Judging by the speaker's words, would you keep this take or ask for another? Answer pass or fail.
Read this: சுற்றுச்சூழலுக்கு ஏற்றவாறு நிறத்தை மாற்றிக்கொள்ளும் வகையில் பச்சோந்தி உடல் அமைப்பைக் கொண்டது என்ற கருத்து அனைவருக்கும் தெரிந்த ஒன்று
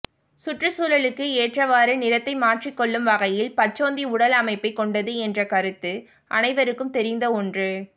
pass